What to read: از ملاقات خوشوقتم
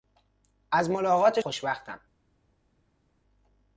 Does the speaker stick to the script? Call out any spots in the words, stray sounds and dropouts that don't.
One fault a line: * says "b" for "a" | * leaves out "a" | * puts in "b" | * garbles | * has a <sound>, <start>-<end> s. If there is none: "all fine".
all fine